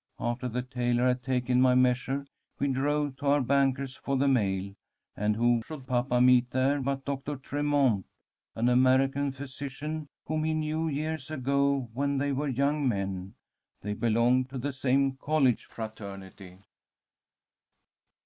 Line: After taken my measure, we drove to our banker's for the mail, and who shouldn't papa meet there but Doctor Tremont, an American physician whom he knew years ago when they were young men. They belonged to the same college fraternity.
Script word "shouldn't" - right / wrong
wrong